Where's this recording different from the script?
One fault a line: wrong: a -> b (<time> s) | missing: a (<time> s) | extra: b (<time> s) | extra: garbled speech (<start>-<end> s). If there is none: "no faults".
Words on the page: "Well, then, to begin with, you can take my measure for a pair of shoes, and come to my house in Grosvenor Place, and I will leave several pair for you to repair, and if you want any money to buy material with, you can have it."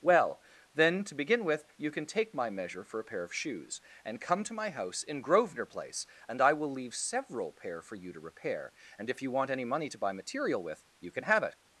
no faults